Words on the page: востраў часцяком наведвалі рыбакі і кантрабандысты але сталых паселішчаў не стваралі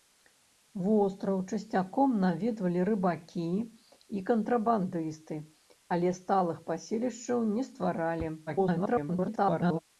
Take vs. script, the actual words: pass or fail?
fail